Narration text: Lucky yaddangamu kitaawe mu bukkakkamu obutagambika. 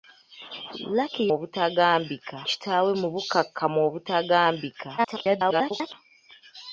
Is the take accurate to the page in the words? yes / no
no